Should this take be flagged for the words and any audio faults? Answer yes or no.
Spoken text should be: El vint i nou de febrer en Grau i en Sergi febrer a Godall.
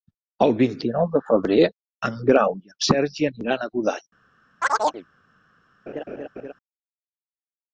yes